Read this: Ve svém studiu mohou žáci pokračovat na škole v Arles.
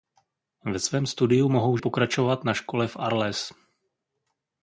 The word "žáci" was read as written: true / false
false